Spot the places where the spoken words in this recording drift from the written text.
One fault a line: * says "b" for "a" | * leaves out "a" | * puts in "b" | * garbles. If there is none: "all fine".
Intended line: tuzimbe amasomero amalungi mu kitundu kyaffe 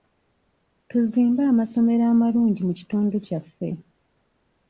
all fine